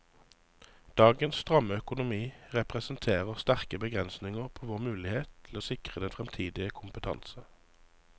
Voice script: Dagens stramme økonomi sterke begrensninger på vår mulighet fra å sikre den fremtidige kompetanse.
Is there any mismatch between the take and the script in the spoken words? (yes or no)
yes